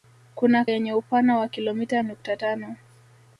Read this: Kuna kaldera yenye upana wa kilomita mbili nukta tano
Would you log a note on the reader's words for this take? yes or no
yes